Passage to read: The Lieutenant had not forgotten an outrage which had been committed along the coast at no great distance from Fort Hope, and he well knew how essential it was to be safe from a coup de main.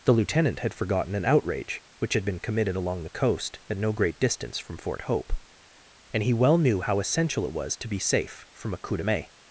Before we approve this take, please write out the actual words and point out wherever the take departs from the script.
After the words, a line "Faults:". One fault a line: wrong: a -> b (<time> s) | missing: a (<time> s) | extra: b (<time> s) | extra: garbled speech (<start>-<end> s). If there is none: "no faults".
The Lieutenant had forgotten an outrage which had been committed along the coast at no great distance from Fort Hope, and he well knew how essential it was to be safe from a coup de main.
Faults:
missing: not (0.7 s)